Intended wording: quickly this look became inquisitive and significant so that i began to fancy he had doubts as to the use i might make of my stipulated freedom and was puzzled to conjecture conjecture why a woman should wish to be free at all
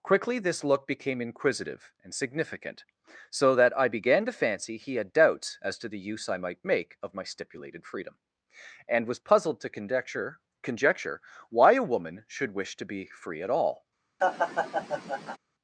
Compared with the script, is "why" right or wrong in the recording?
right